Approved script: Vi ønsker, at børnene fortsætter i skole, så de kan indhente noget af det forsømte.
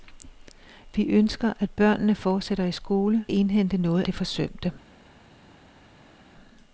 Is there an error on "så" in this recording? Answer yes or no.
yes